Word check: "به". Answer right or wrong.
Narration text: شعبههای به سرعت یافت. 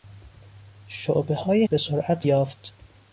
right